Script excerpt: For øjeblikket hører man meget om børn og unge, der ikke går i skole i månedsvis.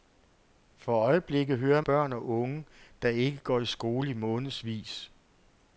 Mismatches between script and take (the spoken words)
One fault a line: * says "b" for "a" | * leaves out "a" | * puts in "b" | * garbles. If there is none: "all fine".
* leaves out "man meget om"